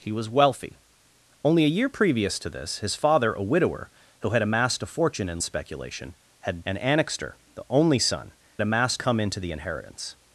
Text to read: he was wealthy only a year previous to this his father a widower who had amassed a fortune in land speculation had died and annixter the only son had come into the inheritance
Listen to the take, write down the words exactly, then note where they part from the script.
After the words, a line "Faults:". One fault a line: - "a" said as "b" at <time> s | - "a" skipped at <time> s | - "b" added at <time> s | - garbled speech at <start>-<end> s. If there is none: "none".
he was wealthy only a year previous to this his father a widower who had amassed a fortune in speculation had and annixter the only son amassed come into the inheritance
Faults:
- "land" skipped at 5.4 s
- "died" skipped at 6.6 s
- "had" said as "amassed" at 8.6 s